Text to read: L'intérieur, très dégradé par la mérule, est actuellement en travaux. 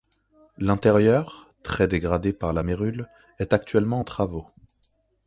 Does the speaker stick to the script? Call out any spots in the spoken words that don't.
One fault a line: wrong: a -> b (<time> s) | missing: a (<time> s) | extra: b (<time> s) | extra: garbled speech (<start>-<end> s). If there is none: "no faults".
no faults